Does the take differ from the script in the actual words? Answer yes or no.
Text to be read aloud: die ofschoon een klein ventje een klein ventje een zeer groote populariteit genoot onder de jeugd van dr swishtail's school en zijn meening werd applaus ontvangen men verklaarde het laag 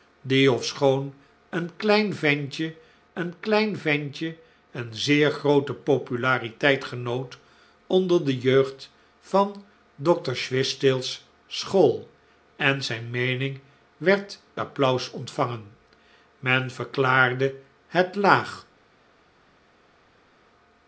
no